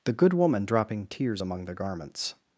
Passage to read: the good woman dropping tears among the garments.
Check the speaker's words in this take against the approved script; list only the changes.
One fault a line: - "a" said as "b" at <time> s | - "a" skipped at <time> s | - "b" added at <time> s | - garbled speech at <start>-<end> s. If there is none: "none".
none